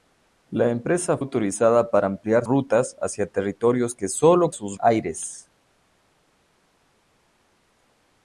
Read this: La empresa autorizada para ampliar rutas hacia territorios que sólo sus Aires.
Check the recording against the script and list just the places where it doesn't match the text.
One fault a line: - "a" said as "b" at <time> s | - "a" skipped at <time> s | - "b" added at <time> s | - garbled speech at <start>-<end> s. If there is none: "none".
none